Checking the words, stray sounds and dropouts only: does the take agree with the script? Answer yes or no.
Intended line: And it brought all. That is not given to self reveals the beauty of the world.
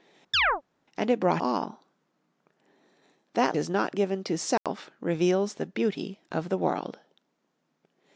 no